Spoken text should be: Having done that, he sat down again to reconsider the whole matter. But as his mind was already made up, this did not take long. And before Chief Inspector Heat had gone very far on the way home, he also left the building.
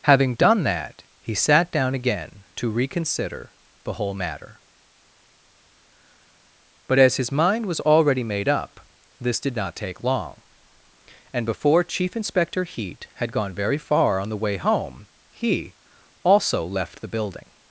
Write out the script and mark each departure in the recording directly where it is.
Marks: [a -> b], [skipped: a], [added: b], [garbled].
Having done that, he sat down again to reconsider the whole matter. But as his mind was already made up, this did not take long. And before Chief Inspector Heat had gone very far on the way home, he also left the building.